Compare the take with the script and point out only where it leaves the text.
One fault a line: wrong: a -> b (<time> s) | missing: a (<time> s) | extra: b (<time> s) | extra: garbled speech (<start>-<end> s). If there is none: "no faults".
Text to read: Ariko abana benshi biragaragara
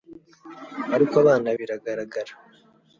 missing: benshi (1.5 s)